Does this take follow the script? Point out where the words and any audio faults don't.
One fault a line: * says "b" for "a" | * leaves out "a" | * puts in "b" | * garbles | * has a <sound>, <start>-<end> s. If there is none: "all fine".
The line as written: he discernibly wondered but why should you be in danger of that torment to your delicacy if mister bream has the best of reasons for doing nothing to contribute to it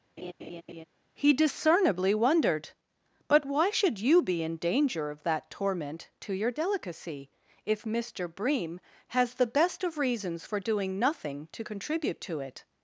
* has a laugh, 0.2-0.8 s